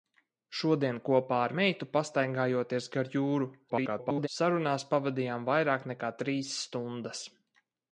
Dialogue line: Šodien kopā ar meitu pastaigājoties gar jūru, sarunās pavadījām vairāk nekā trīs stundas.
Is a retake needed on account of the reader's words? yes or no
yes